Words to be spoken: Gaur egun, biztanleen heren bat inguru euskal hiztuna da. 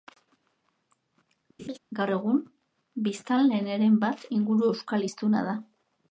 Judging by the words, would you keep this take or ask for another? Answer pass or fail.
pass